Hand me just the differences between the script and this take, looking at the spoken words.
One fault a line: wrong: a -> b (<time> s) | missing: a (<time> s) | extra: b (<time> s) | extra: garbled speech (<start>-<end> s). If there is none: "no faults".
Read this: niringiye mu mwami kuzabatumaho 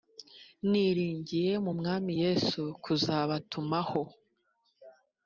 extra: yesu (2.2 s)